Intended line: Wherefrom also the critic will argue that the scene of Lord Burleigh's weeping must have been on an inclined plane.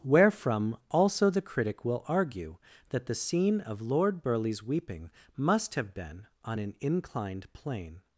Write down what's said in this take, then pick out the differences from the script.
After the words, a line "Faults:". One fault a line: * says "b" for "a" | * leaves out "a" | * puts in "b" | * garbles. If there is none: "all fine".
Wherefrom also the critic will argue that the scene of Lord Burleigh's weeping must have been on an inclined plane.
Faults:
all fine